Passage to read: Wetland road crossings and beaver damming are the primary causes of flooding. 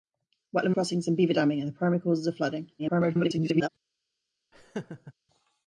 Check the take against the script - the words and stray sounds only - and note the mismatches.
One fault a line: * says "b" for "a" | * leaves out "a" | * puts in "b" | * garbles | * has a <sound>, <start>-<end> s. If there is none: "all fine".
* leaves out "road"
* garbles
* has a laugh, 4.5-5.1 s